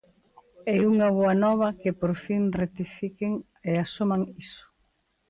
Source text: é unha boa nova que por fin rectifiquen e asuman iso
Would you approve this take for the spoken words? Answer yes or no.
yes